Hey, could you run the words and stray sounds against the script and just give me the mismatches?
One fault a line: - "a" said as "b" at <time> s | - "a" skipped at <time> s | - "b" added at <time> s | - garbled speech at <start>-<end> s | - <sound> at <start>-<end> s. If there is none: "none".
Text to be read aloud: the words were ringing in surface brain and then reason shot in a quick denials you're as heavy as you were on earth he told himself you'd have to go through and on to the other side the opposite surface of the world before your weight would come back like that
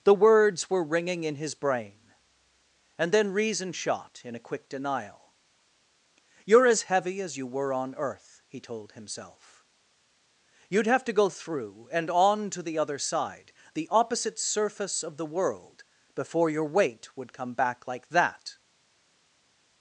- "surface" said as "his" at 1.4 s
- "denials" said as "denial" at 4.7 s